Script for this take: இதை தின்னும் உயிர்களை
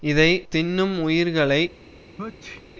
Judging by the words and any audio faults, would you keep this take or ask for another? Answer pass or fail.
fail